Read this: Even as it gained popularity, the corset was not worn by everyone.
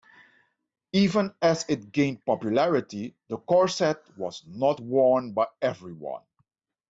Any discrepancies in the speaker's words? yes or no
no